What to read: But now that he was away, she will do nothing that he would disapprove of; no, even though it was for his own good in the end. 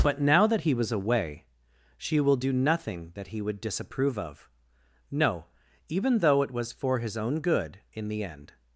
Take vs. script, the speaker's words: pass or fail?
pass